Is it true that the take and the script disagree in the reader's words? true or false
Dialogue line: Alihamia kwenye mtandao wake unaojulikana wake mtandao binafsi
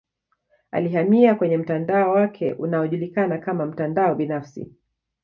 true